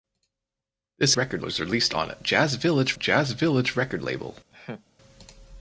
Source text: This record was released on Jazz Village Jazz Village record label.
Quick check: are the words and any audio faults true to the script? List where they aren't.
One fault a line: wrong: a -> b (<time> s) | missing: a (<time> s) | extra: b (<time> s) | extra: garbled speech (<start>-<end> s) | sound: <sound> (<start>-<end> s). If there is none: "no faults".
sound: laugh (4.5-4.9 s)